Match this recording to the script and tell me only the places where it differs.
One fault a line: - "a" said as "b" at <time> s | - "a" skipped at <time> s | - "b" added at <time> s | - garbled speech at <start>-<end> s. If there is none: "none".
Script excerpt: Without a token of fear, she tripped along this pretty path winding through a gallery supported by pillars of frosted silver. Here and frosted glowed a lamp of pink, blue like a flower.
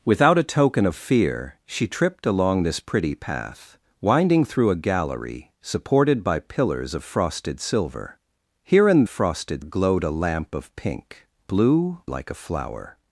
none